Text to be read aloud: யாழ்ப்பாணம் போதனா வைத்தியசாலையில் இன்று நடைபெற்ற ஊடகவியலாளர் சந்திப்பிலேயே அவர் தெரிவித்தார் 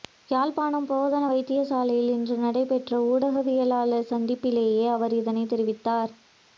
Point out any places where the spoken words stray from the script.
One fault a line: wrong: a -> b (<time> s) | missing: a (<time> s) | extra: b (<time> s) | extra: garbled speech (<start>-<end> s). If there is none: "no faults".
extra: இதனை (5.2 s)